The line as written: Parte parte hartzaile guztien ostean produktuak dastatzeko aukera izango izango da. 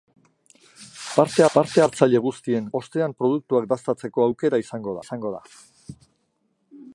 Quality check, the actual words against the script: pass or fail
pass